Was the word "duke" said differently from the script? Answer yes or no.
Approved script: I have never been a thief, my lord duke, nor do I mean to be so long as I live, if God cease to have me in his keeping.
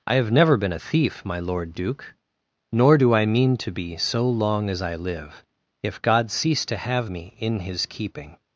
no